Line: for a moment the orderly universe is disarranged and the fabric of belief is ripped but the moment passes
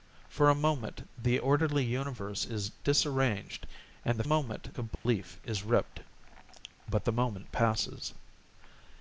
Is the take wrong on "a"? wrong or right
right